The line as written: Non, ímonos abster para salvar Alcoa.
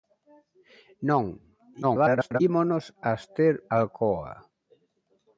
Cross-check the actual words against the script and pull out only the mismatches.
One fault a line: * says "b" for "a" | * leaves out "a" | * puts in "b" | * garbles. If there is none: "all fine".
* garbles
* leaves out "para salvar"